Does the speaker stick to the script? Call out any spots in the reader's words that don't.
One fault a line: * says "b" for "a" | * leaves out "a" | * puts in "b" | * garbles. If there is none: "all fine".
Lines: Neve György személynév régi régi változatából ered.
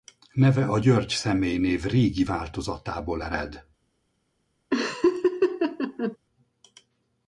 * puts in "a"
* leaves out "régi"